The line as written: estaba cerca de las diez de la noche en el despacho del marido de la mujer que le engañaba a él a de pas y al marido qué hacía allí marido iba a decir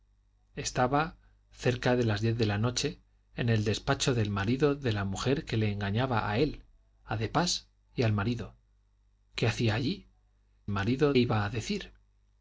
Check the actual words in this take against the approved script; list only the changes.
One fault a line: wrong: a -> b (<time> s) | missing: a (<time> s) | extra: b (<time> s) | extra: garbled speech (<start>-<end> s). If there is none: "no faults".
no faults